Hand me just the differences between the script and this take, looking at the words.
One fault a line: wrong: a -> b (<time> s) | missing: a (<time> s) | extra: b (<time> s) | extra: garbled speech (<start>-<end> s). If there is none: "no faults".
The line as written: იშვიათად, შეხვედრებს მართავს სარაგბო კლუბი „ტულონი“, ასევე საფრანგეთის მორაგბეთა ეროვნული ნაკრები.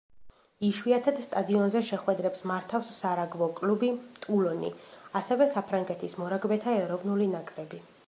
extra: სტადიონზე (1.2 s)